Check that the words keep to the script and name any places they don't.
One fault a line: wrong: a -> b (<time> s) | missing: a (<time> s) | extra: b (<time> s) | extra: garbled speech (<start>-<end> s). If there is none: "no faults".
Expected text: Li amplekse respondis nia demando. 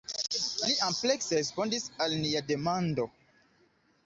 extra: al (2.1 s)